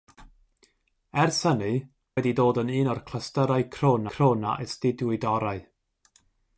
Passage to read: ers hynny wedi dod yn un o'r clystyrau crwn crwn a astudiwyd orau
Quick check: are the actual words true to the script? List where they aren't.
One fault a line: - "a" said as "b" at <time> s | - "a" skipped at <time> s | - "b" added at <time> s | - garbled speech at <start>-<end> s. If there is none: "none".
none